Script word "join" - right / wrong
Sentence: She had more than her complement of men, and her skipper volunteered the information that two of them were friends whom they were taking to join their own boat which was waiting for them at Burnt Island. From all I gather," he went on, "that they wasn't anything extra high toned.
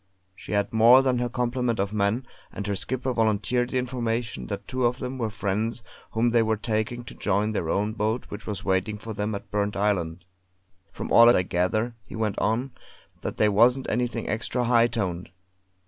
right